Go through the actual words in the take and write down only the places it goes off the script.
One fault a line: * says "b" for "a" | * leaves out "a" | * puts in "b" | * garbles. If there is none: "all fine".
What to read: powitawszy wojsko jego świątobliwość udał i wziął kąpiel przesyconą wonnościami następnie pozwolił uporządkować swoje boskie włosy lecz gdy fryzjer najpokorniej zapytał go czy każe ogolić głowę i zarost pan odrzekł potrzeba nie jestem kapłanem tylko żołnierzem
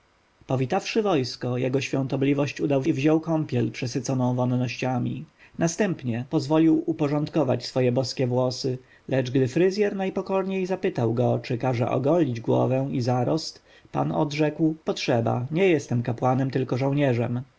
all fine